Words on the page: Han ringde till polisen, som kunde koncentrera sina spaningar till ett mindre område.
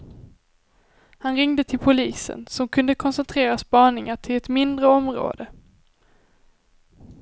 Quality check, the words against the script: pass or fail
fail